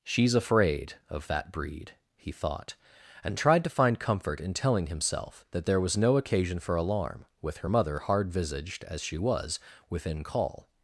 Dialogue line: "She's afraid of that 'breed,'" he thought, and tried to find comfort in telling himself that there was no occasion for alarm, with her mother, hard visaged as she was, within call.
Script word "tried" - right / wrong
right